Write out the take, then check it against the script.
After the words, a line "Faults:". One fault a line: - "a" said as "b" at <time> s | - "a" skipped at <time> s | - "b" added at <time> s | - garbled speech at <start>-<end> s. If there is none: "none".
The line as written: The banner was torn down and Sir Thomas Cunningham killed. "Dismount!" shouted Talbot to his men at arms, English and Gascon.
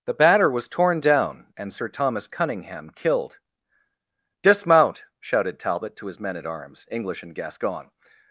The batter was torn down and Sir Thomas Cunningham killed. "Dismount!" shouted Talbot to his men at arms, English and Gascon.
Faults:
- "banner" said as "batter" at 0.1 s